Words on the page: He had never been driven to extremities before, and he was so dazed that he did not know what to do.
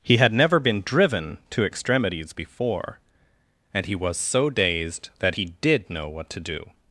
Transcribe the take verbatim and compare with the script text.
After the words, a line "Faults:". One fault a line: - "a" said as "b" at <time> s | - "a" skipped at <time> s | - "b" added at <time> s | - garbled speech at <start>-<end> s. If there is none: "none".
He had never been driven to extremities before, and he was so dazed that he did know what to do.
Faults:
- "not" skipped at 5.9 s